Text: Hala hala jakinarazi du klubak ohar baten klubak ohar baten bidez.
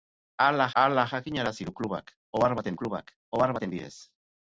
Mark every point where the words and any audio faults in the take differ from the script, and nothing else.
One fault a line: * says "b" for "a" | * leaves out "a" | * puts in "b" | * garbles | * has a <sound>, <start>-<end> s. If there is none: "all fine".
all fine